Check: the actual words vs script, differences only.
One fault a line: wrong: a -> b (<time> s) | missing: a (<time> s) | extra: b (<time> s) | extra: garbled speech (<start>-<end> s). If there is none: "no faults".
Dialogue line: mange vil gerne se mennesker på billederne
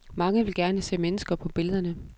no faults